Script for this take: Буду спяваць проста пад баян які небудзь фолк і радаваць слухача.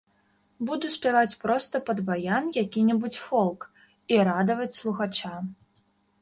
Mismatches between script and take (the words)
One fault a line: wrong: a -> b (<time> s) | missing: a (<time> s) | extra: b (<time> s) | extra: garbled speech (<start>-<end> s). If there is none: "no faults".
no faults